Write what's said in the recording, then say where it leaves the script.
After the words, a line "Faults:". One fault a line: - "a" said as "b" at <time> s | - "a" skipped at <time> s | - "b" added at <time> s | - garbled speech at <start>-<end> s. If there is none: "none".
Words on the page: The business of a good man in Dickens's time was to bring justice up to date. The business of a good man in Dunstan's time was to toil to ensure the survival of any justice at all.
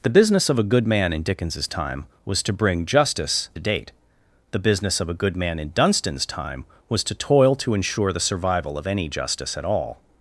The business of a good man in Dickens's time was to bring justice date. The business of a good man in Dunstan's time was to toil to ensure the survival of any justice at all.
Faults:
- "up to" skipped at 3.5 s